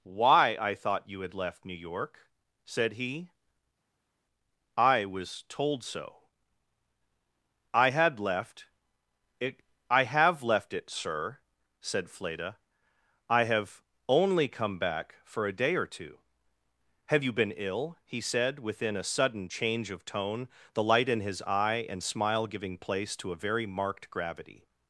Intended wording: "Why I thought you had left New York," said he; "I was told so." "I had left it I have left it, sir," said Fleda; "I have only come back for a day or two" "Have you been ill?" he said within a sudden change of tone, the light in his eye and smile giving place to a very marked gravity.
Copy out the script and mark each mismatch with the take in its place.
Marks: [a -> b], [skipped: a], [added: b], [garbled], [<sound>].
"Why I thought you had left New York," said he; "I was told so." "I had left it I have left it, sir," said Fleda; "I have only come back for a day or two" "Have you been ill?" he said within a sudden change of tone, the light in his eye and smile giving place to a very marked gravity.